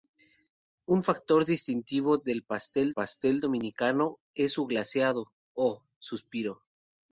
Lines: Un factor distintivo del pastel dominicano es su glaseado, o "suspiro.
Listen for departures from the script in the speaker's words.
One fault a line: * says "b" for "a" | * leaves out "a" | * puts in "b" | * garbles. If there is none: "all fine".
* puts in "pastel"